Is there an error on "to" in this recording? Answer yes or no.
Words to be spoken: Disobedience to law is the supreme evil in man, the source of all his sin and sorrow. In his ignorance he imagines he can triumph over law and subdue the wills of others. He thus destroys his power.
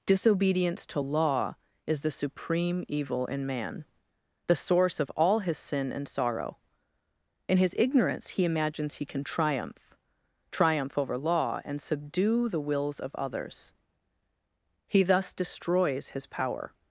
no